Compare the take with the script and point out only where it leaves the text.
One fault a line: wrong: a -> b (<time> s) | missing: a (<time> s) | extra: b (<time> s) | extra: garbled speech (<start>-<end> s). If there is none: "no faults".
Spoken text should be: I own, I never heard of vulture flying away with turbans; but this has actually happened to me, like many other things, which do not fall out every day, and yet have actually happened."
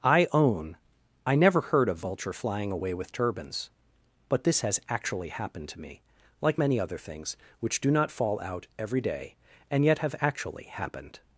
no faults